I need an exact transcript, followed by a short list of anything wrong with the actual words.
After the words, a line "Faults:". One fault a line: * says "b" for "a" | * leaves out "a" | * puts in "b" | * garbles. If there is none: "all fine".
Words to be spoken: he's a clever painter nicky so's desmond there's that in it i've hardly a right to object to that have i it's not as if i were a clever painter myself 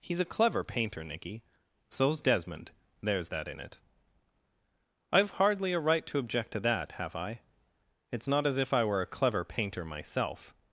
he's a clever painter nicky so's desmond there's that in it i've hardly a right to object to that have i it's not as if i were a clever painter myself
Faults:
all fine